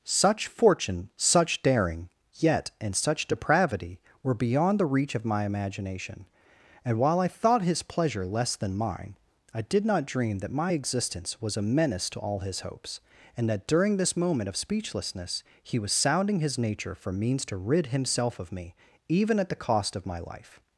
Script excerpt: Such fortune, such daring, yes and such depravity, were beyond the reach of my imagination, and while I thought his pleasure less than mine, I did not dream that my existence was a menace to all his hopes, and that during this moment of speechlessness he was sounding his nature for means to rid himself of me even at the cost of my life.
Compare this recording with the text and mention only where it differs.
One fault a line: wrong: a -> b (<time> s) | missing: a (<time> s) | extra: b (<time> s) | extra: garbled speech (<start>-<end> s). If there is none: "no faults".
wrong: yes -> yet (2.3 s)